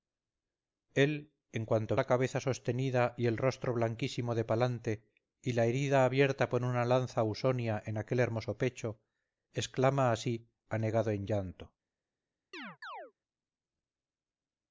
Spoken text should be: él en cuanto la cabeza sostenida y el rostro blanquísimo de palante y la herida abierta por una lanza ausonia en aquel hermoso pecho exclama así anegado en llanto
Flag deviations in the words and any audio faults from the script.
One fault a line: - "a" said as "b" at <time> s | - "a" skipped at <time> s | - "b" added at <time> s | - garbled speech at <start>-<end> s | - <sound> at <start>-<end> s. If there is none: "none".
- chirp at 12.5-13.1 s